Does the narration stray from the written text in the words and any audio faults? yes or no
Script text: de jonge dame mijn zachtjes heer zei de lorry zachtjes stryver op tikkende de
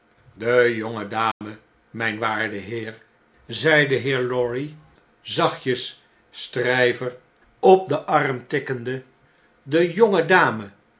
yes